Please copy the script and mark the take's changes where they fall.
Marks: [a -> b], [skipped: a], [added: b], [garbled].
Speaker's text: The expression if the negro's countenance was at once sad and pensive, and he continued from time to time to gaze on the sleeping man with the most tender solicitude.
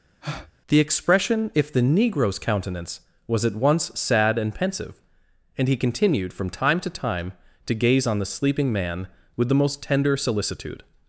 The expression if the negro's countenance was at once sad and pensive, and he continued from time to time to gaze on the sleeping man with the most tender solicitude.